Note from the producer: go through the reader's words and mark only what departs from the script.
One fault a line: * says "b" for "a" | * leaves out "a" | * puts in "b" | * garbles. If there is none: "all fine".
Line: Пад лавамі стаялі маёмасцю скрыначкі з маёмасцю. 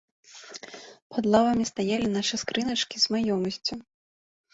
* says "нашы" for "маёмасцю"